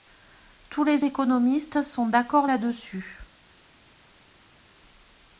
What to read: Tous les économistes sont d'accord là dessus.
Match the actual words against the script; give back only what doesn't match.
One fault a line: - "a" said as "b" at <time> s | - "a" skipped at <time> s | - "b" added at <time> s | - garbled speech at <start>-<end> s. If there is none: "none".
none